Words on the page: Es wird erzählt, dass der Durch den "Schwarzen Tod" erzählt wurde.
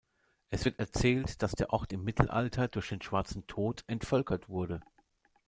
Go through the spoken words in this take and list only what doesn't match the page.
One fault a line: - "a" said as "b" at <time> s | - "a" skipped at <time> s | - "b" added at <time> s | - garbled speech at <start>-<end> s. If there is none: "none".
- "Ort im Mittelalter" added at 1.7 s
- "erzählt" said as "entvölkert" at 3.9 s